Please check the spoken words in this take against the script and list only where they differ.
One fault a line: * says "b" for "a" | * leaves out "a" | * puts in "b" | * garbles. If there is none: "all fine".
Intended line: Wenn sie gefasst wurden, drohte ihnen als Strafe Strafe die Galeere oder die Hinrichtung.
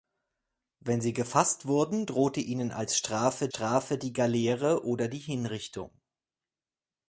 all fine